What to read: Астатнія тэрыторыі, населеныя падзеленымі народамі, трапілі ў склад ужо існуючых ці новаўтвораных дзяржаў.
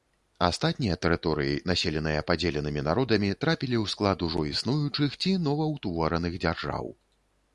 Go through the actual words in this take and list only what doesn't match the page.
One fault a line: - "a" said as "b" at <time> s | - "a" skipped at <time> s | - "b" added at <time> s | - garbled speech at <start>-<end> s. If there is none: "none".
none